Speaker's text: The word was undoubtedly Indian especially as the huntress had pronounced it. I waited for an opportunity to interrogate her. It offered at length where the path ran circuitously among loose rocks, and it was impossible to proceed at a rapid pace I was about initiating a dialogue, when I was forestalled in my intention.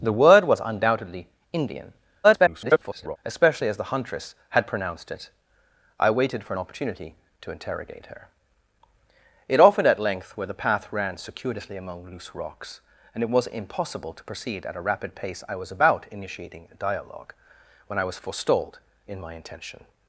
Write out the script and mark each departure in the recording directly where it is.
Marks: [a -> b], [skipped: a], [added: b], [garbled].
The word was undoubtedly Indian [garbled] especially as the huntress had pronounced it. I waited for an opportunity to interrogate her. It offered at length where the path ran circuitously among loose rocks, and it was impossible to proceed at a rapid pace I was about initiating a dialogue, when I was forestalled in my intention.